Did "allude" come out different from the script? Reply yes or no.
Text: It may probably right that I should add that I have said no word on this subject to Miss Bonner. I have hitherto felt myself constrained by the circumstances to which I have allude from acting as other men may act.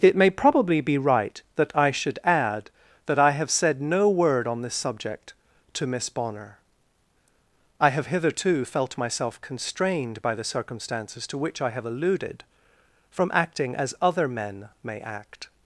yes